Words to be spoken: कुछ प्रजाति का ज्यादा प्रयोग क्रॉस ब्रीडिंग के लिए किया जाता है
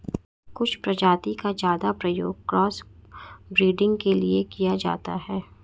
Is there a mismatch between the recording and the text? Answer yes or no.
no